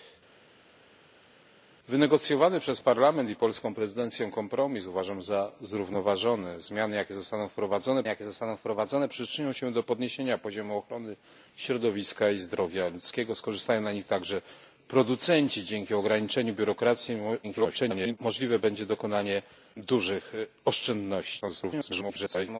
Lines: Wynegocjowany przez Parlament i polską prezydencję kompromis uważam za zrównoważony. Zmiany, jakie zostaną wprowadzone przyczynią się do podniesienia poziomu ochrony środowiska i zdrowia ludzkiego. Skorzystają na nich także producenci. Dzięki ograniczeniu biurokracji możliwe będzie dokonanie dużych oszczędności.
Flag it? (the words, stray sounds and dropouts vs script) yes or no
yes